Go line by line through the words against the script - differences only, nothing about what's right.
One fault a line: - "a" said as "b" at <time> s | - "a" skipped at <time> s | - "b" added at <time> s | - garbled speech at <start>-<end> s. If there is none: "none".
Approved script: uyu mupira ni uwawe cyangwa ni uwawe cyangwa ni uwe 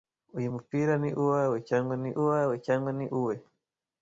none